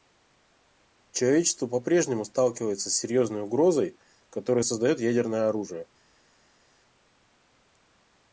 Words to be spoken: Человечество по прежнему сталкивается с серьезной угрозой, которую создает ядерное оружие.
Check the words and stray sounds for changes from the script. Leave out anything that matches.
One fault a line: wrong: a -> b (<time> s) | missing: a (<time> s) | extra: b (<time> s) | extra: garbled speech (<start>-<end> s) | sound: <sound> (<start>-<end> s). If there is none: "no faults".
no faults